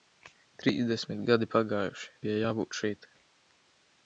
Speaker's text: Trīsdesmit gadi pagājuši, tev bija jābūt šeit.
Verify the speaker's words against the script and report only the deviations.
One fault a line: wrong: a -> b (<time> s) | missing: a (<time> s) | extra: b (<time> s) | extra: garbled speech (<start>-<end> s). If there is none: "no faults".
missing: tev (2.1 s)